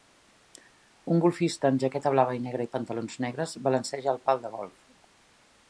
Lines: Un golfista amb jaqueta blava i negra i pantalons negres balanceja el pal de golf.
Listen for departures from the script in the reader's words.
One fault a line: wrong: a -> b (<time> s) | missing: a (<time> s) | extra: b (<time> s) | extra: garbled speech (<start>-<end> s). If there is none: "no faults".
no faults